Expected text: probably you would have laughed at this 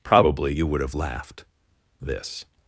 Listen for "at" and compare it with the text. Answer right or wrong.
wrong